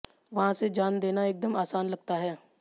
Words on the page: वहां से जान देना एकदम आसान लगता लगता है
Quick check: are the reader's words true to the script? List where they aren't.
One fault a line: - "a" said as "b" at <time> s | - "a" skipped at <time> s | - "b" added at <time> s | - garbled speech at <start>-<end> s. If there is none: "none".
- "लगता" skipped at 2.2 s